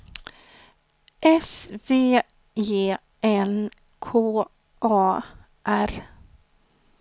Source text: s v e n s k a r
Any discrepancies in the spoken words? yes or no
yes